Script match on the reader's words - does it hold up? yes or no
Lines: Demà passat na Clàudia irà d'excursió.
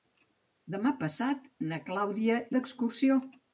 no